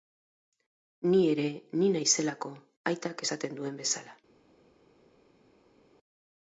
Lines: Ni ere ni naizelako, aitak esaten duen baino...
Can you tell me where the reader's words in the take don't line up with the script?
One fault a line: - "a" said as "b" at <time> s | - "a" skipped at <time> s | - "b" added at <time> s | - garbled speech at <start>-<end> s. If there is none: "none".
- "baino" said as "bezala" at 3.8 s